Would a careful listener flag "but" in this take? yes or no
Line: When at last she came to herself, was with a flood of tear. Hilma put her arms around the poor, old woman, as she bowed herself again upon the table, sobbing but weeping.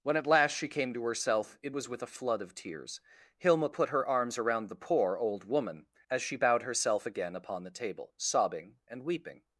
yes